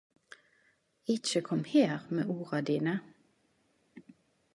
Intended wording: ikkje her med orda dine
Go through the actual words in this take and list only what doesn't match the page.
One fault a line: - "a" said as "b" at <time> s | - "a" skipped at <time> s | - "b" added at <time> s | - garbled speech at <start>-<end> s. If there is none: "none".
- "kom" added at 1.4 s